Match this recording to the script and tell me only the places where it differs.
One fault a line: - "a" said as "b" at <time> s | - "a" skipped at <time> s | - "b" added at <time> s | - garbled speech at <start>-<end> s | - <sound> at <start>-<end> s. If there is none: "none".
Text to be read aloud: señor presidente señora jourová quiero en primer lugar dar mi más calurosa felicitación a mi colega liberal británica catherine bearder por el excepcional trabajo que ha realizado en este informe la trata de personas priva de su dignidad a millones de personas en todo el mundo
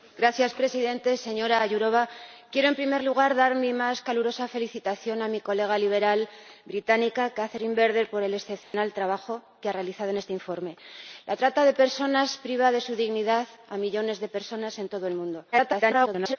- dropout at 8.6-8.7 s
- garbled speech at 15.5-16.4 s